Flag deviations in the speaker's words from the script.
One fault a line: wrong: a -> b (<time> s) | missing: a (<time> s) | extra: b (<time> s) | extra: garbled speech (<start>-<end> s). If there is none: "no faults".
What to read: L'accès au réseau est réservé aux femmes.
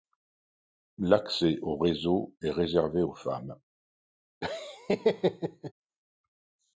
no faults